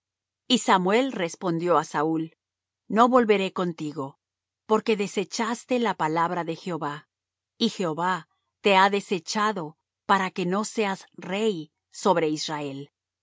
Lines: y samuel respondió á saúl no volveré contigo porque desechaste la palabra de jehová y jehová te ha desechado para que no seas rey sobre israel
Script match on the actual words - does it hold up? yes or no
yes